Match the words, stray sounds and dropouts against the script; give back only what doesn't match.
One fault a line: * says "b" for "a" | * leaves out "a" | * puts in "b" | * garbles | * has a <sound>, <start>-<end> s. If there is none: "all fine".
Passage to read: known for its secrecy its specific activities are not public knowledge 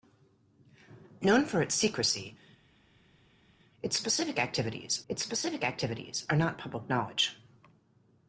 * puts in "its specific activities"